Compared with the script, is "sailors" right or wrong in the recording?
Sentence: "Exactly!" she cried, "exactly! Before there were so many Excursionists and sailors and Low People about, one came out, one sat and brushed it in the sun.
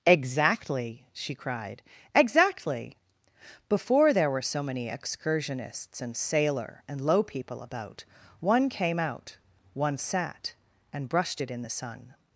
wrong